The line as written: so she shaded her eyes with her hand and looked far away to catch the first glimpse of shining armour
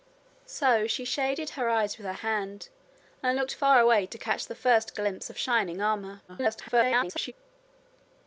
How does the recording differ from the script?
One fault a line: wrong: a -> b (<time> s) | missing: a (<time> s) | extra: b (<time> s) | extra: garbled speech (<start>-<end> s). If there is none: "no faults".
extra: garbled speech (6.3-7.3 s)